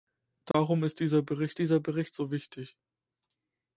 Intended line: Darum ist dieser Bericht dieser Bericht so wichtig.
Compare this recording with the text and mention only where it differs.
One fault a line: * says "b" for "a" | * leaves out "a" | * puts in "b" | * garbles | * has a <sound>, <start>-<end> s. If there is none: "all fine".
* has a dropout, 0.5-0.5 s